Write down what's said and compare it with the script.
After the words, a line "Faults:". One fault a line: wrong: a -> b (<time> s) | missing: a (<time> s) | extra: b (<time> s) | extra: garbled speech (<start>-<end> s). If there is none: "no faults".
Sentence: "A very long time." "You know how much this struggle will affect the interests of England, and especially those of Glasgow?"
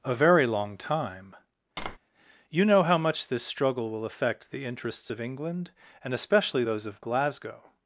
"A very long time." "You know how much this struggle will affect the interests of England, and especially those of Glasgow?"
Faults:
no faults